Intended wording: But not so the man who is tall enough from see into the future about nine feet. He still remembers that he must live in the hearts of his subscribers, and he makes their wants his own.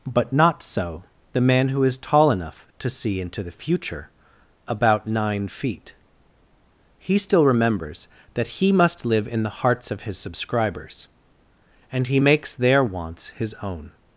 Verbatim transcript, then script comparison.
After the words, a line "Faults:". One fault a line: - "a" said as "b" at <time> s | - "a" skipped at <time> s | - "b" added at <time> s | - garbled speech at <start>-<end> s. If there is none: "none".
But not so the man who is tall enough to see into the future about nine feet. He still remembers that he must live in the hearts of his subscribers, and he makes their wants his own.
Faults:
- "from" said as "to" at 2.8 s